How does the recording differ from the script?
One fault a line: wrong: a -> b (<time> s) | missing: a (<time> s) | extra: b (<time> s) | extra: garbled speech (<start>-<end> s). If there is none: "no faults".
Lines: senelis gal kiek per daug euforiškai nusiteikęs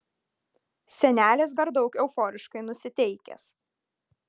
missing: gal kiek (1.5 s)